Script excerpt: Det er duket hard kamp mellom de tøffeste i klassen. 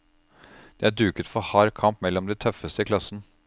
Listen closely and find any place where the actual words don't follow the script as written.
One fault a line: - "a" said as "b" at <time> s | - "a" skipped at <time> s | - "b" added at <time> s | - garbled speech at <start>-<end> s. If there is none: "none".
- "for" added at 1.3 s